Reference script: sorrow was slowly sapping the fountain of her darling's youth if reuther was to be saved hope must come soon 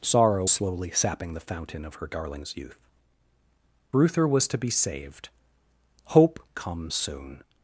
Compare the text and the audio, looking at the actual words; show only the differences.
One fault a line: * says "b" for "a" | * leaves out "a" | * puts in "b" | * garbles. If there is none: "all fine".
* leaves out "was"
* leaves out "if"
* leaves out "must"